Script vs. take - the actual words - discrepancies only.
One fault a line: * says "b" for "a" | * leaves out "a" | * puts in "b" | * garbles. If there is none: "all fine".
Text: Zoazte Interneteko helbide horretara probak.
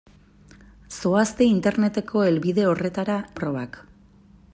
all fine